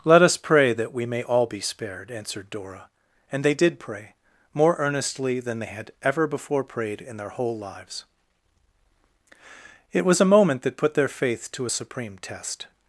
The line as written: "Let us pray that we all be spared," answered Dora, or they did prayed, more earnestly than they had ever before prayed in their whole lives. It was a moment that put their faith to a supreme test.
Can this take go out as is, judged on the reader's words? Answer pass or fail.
fail